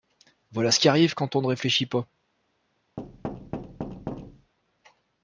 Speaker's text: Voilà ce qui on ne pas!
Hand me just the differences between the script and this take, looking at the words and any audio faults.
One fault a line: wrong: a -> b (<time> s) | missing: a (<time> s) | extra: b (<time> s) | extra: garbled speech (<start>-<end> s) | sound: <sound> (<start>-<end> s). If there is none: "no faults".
extra: arrive quand (0.9 s)
extra: réfléchit (1.5 s)
sound: thud (3.0-4.5 s)